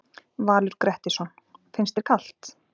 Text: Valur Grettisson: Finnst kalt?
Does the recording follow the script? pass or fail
fail